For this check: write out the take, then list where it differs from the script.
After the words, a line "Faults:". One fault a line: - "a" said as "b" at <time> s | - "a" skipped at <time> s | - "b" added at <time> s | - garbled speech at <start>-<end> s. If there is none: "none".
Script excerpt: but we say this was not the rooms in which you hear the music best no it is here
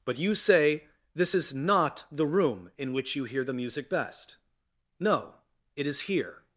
but you say this is not the room in which you hear the music best no it is here
Faults:
- "we" said as "you" at 0.2 s
- "was" said as "is" at 1.3 s
- "rooms" said as "room" at 2.3 s